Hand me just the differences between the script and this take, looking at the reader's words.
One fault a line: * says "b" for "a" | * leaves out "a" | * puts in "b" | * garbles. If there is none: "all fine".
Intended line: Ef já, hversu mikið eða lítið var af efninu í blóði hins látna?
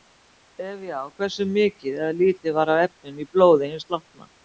all fine